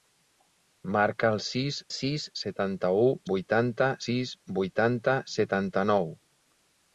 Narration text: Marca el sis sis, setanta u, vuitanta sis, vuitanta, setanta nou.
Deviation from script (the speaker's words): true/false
false